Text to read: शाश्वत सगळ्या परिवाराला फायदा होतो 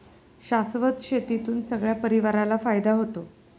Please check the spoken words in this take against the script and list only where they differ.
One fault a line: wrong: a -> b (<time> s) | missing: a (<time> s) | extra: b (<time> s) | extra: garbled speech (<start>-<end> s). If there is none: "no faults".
extra: शेतीतून (1.0 s)